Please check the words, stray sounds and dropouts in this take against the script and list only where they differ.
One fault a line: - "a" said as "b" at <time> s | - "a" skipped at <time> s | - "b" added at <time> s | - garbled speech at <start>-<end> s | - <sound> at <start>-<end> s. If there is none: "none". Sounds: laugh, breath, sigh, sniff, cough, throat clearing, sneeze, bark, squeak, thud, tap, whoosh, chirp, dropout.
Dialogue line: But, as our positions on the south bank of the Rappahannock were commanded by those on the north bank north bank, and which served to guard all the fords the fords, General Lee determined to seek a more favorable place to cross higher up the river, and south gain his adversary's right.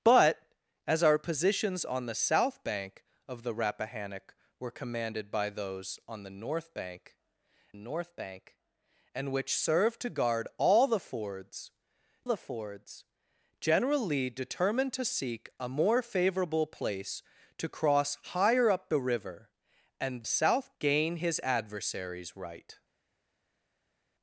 none